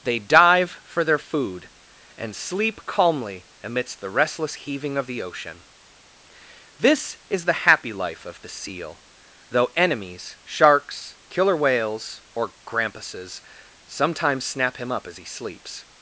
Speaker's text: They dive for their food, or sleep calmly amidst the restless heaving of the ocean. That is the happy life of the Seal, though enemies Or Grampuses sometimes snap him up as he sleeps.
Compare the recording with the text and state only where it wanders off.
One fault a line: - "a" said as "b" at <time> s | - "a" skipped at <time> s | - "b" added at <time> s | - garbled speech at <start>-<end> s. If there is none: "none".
- "or" said as "and" at 2.2 s
- "That" said as "This" at 6.8 s
- "Sharks Killer Whales" added at 10.4 s